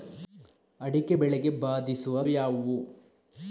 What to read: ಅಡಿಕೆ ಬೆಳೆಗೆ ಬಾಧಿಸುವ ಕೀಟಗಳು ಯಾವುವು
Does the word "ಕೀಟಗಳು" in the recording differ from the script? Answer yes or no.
yes